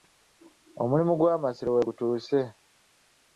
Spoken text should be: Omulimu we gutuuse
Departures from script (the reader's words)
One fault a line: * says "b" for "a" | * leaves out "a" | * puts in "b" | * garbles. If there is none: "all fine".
* puts in "gw'Amasiro"